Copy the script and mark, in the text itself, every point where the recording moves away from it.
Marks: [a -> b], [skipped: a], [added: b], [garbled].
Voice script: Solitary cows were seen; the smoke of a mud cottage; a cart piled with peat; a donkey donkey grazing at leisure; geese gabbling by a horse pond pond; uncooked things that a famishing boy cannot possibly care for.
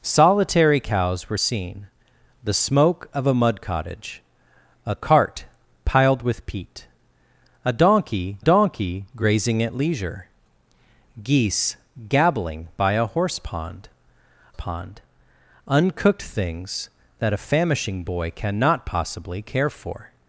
Solitary cows were seen; the smoke of a mud cottage; a cart piled with peat; a donkey donkey grazing at leisure; geese gabbling by a horse pond pond; uncooked things that a famishing boy cannot possibly care for.